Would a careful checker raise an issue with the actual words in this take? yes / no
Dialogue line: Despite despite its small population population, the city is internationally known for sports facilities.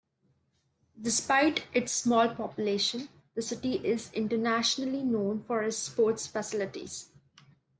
yes